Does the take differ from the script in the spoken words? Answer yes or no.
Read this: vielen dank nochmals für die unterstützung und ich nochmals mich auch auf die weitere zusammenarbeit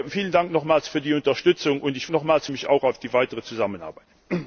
no